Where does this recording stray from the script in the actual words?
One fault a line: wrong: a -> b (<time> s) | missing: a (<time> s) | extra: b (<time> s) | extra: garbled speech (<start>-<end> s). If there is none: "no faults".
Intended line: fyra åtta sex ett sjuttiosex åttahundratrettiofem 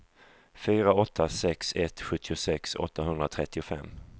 no faults